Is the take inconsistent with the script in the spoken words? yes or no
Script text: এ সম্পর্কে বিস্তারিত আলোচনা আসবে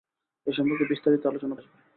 no